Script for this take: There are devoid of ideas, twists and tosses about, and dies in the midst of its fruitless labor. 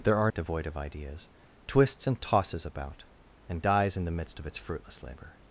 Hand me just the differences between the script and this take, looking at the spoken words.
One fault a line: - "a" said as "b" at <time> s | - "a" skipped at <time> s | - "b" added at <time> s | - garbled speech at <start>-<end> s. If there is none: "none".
none